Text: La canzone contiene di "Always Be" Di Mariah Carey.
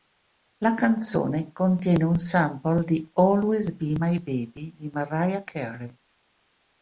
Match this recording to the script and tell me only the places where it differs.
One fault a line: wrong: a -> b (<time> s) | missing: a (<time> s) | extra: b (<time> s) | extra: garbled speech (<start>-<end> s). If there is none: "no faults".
extra: un sample (2.0 s)
extra: My Baby (4.0 s)